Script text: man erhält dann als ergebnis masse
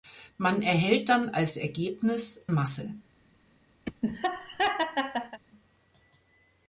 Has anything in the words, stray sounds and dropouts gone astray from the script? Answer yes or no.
yes